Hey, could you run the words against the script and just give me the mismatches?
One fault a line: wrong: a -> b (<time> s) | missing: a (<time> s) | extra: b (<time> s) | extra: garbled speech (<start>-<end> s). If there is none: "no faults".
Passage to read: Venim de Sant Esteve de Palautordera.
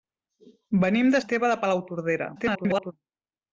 missing: Sant (1.2 s)
extra: garbled speech (2.3-2.9 s)